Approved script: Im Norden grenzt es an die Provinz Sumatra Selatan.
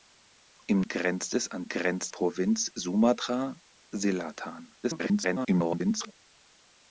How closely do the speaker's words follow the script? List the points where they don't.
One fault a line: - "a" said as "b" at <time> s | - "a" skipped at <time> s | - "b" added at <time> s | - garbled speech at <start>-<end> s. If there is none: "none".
- "Norden" skipped at 0.8 s
- "die" said as "grenzt" at 1.7 s
- garbled speech at 4.8-6.1 s